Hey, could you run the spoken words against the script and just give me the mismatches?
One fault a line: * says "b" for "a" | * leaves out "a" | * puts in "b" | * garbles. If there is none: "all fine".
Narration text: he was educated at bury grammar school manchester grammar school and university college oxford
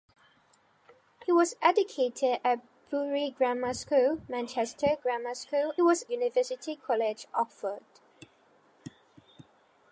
* says "was" for "and"